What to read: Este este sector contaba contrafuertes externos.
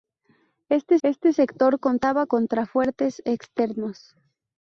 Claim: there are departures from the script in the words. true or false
false